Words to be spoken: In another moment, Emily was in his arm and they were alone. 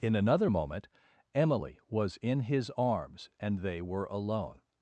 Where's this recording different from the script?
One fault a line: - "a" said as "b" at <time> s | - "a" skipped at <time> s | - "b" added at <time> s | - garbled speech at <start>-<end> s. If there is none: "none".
- "arm" said as "arms" at 2.8 s